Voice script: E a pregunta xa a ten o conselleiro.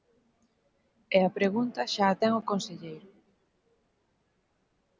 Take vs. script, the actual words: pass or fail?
pass